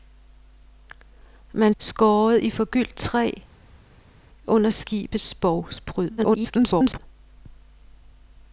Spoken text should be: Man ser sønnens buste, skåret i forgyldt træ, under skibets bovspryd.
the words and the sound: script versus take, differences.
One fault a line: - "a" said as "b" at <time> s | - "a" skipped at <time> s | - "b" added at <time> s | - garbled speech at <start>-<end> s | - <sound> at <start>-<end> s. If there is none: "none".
- "ser sønnens buste" skipped at 1.7 s
- garbled speech at 6.2-7.0 s